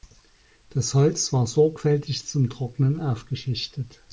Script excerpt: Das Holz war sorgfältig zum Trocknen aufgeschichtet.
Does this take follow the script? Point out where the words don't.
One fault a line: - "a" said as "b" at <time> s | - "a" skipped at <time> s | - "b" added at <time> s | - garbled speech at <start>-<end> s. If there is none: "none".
none